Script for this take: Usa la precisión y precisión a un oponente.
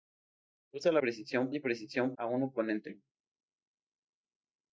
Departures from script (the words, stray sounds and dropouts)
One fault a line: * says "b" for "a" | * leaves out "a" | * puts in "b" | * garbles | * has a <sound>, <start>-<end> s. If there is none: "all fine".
all fine